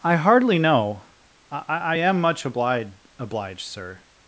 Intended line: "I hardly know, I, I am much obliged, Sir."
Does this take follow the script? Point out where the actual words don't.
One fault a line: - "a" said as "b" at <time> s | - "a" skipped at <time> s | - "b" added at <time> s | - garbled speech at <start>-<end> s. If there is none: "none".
- "obliged" added at 3.2 s